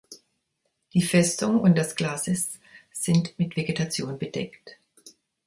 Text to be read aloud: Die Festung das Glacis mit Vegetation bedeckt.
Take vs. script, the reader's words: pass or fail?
fail